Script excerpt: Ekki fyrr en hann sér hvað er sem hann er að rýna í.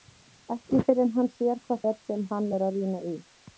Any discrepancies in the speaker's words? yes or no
no